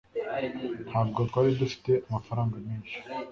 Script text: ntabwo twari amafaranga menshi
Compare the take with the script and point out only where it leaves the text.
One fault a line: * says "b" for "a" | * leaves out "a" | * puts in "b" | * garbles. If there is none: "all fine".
* puts in "dufite"